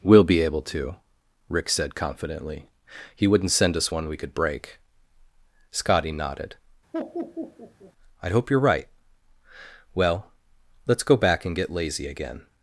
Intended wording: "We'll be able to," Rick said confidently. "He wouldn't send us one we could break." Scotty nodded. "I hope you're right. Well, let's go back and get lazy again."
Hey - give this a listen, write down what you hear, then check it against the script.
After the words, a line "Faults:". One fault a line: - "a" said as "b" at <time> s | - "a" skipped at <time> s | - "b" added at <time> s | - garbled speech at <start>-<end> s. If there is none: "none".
"We'll be able to," Rick said confidently. "He wouldn't send us one we could break." Scotty nodded. "I hope you're right. Well, let's go back and get lazy again."
Faults:
none